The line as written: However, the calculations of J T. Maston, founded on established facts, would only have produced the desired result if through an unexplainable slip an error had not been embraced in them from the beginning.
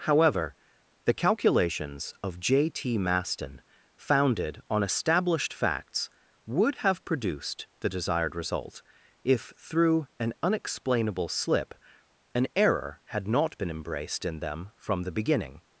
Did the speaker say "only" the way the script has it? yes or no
no